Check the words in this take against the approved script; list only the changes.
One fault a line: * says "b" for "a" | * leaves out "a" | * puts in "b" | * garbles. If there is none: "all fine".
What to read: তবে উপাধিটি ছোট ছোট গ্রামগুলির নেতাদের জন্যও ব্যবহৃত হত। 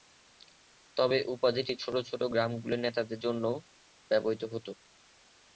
all fine